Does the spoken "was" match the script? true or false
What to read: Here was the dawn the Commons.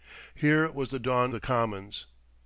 true